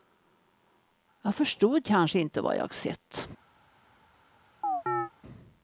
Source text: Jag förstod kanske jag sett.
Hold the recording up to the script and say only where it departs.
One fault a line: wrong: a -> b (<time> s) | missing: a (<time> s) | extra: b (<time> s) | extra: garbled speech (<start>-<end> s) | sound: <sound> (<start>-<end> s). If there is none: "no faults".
extra: inte vad (2.2 s)
sound: chirp (4.6-5.1 s)